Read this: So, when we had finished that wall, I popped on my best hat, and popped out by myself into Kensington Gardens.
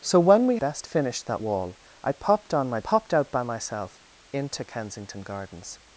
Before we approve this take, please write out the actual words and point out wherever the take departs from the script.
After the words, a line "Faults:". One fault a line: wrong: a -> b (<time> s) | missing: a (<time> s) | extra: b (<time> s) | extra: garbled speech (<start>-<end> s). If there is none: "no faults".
So, when we best finished that wall, I popped on my popped out by myself into Kensington Gardens.
Faults:
wrong: had -> best (0.5 s)
missing: best hat and (2.8 s)